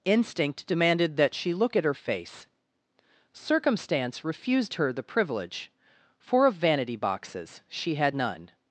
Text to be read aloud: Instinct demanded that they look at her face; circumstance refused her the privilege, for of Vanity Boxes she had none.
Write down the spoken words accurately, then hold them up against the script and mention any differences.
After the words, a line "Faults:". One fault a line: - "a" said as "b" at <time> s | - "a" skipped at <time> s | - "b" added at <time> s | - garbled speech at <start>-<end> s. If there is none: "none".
Instinct demanded that she look at her face; circumstance refused her the privilege, for of Vanity Boxes she had none.
Faults:
- "they" said as "she" at 1.3 s